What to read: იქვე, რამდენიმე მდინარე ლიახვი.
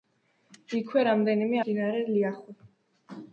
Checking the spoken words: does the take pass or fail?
pass